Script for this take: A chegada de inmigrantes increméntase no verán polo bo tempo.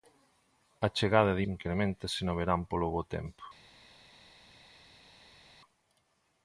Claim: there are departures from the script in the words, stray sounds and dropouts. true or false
true